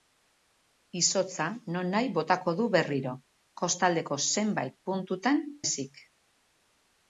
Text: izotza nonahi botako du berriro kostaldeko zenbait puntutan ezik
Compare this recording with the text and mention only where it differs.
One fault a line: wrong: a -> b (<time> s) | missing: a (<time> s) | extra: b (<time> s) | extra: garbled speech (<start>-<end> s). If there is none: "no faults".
no faults